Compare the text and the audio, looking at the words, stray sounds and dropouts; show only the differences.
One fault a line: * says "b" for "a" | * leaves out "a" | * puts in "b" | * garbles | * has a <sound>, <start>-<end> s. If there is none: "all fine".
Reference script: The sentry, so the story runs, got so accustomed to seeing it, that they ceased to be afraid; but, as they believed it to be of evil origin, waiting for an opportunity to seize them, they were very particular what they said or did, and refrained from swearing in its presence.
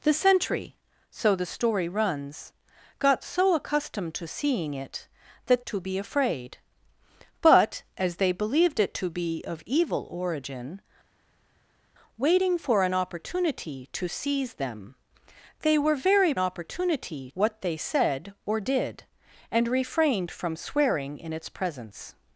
* leaves out "they ceased"
* says "opportunity" for "particular"